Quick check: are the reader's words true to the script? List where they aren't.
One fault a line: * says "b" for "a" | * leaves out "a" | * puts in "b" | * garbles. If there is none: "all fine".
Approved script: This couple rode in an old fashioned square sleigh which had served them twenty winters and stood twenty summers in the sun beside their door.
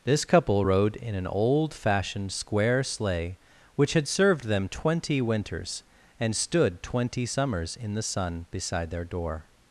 all fine